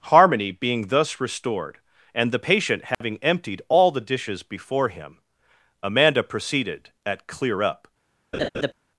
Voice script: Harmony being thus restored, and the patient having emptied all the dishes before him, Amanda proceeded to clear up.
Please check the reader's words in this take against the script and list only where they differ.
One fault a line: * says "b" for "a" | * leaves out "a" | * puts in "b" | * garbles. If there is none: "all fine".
* says "at" for "to"